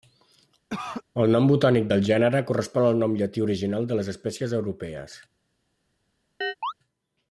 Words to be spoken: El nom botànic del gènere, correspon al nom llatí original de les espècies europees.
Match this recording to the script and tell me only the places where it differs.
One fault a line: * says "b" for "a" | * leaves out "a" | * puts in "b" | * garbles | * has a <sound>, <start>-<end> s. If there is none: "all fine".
* has a cough, 0.7-1.0 s
* has a chirp, 6.4-6.7 s